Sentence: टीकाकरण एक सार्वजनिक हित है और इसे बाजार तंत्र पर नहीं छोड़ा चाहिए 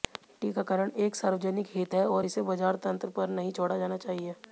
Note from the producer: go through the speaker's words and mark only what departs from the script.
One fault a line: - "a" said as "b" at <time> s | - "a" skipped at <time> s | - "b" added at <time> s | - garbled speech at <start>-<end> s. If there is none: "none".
- "जाना" added at 3.8 s